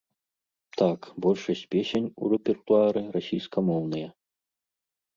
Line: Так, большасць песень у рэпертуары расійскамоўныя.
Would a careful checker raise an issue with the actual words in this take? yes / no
no